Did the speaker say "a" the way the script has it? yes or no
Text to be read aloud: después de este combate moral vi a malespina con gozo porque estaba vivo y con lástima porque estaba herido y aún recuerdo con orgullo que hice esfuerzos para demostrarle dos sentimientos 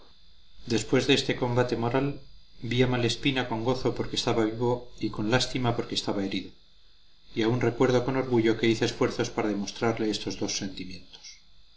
yes